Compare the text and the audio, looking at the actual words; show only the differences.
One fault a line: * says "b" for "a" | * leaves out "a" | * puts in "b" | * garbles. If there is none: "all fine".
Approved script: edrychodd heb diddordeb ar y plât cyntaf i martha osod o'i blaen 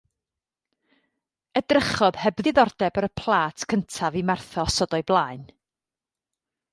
all fine